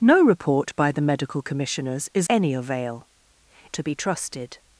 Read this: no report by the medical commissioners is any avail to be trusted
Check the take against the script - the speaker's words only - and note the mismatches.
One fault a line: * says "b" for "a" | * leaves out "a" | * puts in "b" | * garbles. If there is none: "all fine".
all fine